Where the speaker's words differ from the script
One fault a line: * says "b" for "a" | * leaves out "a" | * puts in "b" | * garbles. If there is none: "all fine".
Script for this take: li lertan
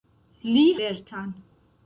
all fine